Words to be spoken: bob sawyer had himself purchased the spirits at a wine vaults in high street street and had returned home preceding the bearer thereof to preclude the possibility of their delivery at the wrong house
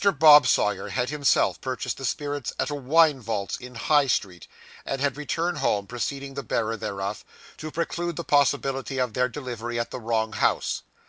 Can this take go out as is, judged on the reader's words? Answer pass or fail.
fail